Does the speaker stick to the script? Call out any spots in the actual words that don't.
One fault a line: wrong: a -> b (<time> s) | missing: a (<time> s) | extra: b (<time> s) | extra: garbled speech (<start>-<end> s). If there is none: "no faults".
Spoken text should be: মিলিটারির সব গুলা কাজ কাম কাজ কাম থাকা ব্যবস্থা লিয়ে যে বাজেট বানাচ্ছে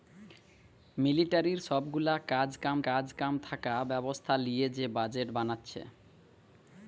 no faults